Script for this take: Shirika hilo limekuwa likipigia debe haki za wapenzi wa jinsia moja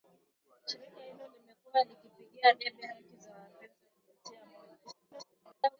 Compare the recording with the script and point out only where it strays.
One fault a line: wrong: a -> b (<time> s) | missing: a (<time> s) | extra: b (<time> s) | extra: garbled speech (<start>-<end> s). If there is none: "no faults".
extra: garbled speech (4.8-5.8 s)